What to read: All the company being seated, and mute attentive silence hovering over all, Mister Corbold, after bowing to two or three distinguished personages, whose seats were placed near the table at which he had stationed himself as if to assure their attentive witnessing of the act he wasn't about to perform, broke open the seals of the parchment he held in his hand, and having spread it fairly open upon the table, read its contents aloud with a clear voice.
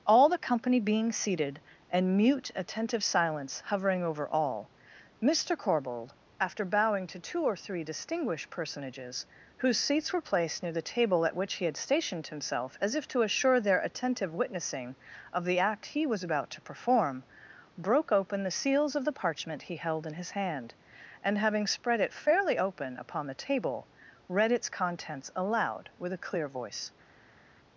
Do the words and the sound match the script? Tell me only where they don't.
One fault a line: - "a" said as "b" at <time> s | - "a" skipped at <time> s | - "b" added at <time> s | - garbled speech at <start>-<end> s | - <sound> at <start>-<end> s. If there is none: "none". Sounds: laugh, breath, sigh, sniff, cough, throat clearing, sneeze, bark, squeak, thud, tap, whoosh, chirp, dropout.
- "wasn't" said as "was" at 16.1 s